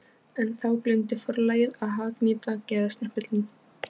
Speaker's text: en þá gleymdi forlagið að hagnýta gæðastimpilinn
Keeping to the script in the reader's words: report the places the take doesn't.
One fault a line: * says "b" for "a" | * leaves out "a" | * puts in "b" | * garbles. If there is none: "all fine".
all fine